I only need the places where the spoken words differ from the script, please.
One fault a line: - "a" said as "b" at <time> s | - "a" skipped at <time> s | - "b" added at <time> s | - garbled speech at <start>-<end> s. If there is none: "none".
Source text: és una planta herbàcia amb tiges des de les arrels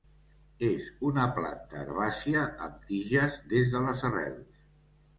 none